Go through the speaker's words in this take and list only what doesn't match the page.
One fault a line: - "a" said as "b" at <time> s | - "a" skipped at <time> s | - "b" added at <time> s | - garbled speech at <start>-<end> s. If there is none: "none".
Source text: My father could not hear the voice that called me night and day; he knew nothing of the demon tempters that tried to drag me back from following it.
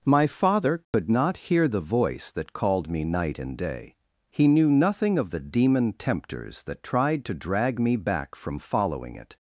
none